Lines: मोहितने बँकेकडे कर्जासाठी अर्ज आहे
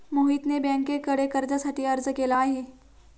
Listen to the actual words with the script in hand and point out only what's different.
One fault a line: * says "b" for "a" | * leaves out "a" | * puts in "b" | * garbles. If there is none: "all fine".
* puts in "केला"